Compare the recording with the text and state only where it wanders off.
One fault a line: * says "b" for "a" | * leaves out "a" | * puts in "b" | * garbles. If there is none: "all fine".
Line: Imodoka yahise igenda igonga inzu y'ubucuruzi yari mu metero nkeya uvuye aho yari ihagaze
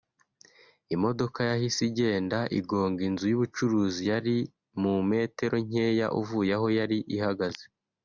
all fine